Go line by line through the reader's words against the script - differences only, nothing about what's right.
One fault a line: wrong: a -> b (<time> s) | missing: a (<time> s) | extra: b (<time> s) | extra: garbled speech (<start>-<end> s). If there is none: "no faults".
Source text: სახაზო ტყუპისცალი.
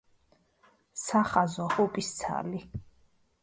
no faults